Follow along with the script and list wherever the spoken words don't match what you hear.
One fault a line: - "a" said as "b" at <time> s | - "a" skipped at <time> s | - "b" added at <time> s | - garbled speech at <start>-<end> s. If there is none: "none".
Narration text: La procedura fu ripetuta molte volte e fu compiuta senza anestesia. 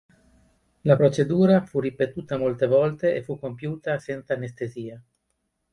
none